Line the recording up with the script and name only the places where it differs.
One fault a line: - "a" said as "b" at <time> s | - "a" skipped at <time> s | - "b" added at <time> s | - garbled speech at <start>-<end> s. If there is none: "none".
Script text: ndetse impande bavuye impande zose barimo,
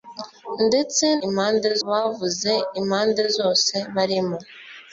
none